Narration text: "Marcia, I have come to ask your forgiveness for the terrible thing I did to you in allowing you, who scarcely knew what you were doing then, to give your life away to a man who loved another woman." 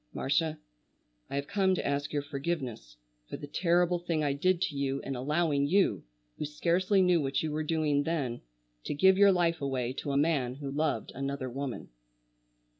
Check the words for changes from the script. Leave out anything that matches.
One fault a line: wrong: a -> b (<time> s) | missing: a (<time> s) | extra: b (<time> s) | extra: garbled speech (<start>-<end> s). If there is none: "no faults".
no faults